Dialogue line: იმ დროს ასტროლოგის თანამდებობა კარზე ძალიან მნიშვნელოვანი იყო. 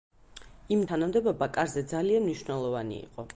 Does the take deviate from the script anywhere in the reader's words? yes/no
yes